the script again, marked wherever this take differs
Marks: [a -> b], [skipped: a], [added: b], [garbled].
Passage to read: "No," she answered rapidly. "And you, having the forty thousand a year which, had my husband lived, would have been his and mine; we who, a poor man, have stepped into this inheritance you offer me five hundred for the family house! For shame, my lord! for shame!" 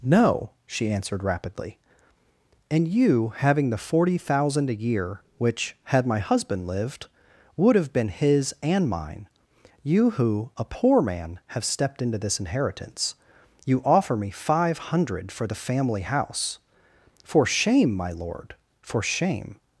"No," she answered rapidly. "And you, having the forty thousand a year which, had my husband lived, would have been his and mine; [we -> you] who, a poor man, have stepped into this inheritance you offer me five hundred for the family house! For shame, my lord! for shame!"